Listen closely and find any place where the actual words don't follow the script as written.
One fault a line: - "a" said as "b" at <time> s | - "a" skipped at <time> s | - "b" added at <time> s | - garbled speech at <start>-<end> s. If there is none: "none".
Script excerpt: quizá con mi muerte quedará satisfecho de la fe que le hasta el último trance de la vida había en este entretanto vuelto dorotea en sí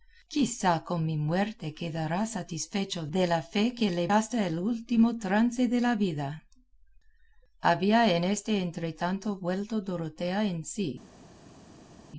none